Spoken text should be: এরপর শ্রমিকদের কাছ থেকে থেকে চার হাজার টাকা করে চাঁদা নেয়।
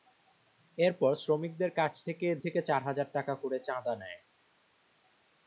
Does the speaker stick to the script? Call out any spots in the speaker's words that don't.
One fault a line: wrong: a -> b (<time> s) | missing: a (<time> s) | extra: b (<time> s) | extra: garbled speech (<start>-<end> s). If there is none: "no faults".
no faults